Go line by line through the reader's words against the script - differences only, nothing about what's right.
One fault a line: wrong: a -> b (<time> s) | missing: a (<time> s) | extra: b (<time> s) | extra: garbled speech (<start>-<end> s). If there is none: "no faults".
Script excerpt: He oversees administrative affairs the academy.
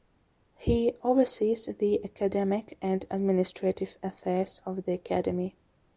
extra: the academic and (1.7 s)
extra: of (4.7 s)